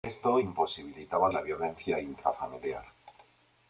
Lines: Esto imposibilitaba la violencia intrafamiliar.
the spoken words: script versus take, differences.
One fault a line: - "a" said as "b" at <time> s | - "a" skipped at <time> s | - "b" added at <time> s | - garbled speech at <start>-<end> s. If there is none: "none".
none